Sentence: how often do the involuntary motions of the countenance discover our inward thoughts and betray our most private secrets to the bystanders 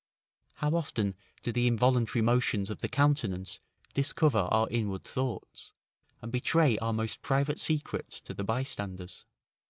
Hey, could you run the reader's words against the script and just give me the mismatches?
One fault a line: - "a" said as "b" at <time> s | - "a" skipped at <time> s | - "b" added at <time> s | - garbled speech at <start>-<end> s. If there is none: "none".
none